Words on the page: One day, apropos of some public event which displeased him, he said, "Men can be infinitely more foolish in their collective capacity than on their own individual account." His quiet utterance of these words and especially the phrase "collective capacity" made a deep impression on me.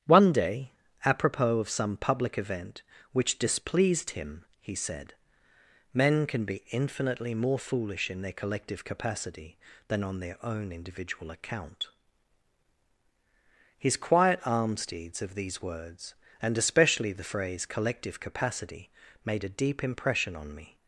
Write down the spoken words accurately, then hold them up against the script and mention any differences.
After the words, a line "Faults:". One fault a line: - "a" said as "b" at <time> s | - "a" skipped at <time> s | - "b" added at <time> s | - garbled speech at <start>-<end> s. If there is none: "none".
One day, apropos of some public event which displeased him, he said, "Men can be infinitely more foolish in their collective capacity than on their own individual account." His quiet almsdeeds of these words and especially the phrase "collective capacity" made a deep impression on me.
Faults:
- "utterance" said as "almsdeeds" at 14.4 s